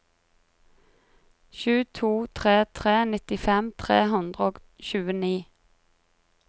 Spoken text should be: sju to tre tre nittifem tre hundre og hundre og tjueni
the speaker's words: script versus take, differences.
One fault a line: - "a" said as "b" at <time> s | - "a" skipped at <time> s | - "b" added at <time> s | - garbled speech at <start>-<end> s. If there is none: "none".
- "hundre og" skipped at 4.6 s